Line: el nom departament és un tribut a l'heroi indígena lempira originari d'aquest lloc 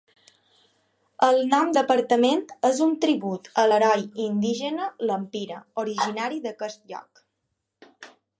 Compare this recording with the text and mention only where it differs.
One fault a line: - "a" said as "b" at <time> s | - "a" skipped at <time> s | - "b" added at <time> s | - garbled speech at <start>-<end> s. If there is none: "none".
none